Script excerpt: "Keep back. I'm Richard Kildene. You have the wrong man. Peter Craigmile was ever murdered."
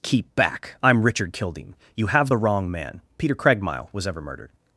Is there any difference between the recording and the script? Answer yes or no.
no